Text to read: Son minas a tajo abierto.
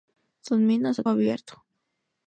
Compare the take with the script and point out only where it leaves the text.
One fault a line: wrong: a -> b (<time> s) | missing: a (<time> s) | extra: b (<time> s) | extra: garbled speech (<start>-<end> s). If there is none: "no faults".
missing: tajo (1.0 s)